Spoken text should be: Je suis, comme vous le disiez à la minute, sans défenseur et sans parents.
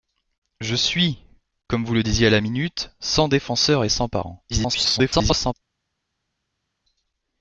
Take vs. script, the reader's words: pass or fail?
fail